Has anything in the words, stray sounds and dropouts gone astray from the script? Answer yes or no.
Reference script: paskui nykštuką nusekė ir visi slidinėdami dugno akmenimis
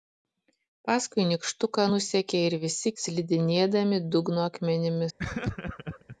yes